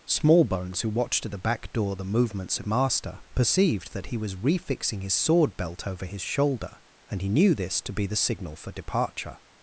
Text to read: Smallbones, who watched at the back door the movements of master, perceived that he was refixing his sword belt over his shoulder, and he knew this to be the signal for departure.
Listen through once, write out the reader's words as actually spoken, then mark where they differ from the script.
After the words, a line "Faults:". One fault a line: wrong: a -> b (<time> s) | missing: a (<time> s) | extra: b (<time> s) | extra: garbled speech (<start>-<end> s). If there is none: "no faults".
Smallbones, who watched at the back door the movements of master, perceived that he was refixing his sword belt over his shoulder, and he knew this to be the signal for departure.
Faults:
no faults